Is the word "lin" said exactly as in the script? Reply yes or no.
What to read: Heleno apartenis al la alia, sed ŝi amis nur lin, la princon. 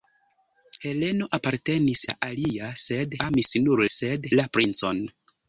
no